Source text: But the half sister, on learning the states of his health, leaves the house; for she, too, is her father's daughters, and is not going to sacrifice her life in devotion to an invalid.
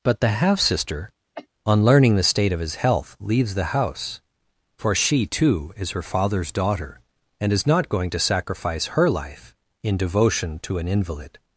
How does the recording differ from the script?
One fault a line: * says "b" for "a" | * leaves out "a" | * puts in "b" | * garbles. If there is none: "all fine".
* says "state" for "states"
* says "daughter" for "daughters"